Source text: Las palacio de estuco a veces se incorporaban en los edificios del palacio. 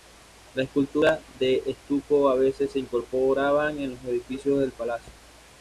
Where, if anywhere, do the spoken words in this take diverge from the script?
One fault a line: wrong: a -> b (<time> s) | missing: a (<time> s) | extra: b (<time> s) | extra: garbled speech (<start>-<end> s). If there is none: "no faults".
wrong: palacio -> esculturas (0.7 s)